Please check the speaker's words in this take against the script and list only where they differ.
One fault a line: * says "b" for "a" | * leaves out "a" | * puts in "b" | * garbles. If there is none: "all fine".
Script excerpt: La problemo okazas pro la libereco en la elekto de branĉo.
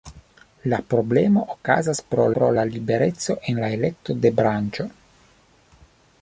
* puts in "pro"